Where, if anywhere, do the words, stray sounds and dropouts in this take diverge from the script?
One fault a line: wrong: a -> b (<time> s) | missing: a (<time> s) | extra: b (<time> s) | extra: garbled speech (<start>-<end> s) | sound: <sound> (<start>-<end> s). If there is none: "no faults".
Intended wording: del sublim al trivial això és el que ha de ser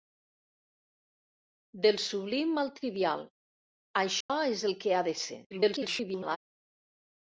sound: dropout (4.2-4.3 s)
extra: garbled speech (5.5-6.4 s)